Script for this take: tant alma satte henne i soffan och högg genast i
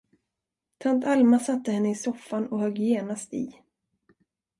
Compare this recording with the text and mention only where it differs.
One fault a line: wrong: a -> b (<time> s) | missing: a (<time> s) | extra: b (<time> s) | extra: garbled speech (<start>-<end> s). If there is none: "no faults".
no faults